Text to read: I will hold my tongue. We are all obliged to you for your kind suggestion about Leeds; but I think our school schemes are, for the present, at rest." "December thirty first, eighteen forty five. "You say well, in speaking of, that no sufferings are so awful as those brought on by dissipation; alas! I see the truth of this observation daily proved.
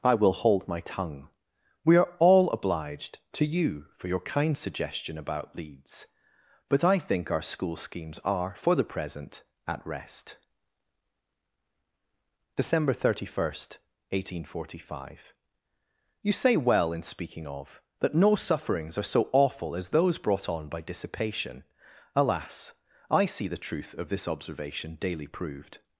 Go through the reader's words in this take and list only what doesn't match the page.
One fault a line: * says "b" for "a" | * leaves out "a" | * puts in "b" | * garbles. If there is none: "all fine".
all fine